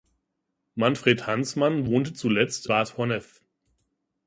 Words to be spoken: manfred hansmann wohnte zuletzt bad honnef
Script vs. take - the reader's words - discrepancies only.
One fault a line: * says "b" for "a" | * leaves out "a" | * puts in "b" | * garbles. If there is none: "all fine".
all fine